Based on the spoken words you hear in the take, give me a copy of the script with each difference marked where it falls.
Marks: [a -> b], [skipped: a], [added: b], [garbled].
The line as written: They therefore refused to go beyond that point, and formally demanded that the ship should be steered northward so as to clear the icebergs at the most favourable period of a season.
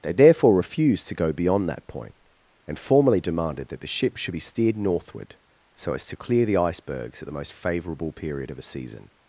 They therefore refused to go beyond that point, and formally demanded that the ship should be steered northward so as to clear the icebergs at the most favourable period of a season.